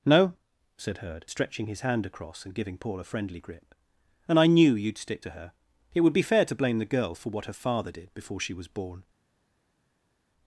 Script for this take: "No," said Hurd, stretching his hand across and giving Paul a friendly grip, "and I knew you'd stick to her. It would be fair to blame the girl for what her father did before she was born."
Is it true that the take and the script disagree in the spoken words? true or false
false